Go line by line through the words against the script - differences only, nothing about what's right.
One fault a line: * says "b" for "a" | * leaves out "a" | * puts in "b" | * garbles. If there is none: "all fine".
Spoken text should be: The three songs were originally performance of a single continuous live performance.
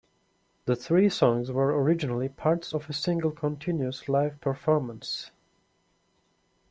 * says "parts" for "performance"